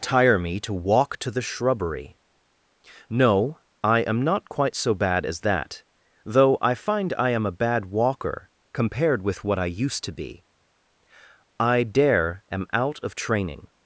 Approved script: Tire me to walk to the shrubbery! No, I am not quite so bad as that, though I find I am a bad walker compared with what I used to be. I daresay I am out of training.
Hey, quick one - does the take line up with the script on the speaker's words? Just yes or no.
no